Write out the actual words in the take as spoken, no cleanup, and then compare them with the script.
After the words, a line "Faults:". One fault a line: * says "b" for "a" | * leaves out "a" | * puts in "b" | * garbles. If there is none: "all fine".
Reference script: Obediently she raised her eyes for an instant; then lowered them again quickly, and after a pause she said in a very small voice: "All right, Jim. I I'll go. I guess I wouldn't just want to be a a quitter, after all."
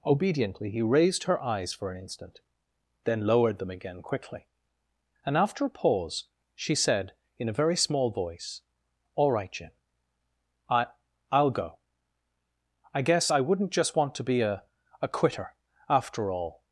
Obediently he raised her eyes for an instant; then lowered them again quickly, and after a pause she said in a very small voice: "All right, Jim. I I'll go. I guess I wouldn't just want to be a a quitter, after all."
Faults:
* says "he" for "she"